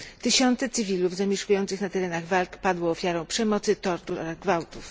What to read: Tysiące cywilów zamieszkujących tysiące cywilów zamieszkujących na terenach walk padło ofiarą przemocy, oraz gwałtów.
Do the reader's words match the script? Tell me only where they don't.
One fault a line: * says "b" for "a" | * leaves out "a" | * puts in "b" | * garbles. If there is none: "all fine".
* leaves out "tysiące cywilów zamieszkujących"
* puts in "tortur"